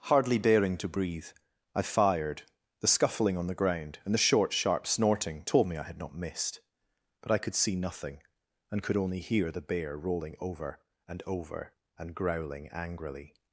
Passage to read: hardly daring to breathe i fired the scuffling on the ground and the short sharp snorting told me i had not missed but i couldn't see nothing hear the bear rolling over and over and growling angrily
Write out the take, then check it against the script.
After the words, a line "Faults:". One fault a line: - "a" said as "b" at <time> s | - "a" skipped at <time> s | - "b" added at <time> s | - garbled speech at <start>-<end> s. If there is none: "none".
hardly daring to breathe i fired the scuffling on the ground and the short sharp snorting told me i had not missed but i could see nothing and could only hear the bear rolling over and over and growling angrily
Faults:
- "couldn't" said as "could" at 7.4 s
- "and could only" added at 8.7 s